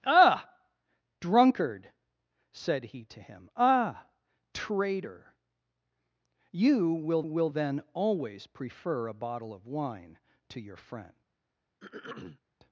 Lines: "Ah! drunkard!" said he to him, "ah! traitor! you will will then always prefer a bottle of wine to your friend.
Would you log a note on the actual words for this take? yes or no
no